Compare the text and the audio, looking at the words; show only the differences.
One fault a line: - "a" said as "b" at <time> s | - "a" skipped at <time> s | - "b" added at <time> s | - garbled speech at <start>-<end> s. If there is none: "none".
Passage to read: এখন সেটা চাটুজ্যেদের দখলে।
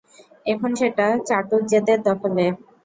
none